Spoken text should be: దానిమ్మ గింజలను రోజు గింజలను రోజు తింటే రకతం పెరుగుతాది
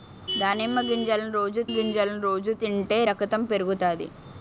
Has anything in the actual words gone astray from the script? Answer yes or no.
no